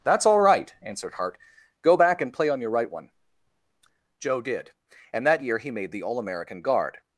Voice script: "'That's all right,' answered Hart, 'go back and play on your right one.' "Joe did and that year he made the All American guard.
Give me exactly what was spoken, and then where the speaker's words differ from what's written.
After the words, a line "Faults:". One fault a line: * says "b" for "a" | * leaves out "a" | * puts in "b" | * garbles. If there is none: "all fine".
"'That's all right,' answered Hart, 'go back and play on your right one.' "Joe did and that year he made the All American guard.
Faults:
all fine